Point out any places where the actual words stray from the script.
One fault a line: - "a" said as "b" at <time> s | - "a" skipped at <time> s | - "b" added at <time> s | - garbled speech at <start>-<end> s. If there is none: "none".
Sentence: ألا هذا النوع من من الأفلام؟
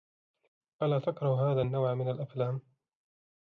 - "تكره" added at 1.0 s
- "من" skipped at 2.1 s